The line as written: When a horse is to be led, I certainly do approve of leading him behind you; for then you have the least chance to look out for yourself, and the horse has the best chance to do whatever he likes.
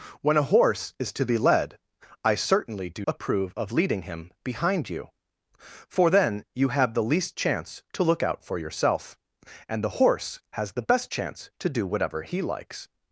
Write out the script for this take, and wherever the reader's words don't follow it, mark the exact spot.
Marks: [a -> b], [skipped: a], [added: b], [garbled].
When a horse is to be led, I certainly do approve of leading him behind you; for then you have the least chance to look out for yourself, and the horse has the best chance to do whatever he likes.